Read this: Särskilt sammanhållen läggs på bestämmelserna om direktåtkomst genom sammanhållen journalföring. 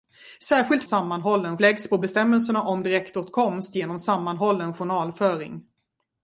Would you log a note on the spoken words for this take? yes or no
no